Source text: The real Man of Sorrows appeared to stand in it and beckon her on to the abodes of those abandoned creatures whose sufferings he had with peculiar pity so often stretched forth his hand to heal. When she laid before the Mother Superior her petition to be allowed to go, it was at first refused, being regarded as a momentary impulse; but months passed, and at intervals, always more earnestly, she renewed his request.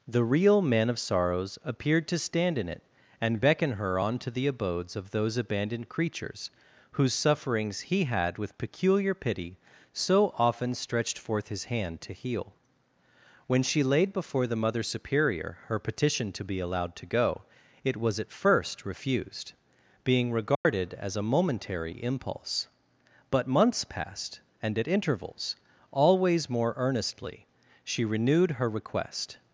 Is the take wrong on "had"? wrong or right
right